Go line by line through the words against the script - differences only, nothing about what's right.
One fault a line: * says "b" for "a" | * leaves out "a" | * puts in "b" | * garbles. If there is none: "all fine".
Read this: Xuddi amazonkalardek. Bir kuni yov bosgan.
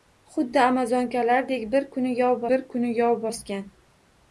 * puts in "bir kuni yov"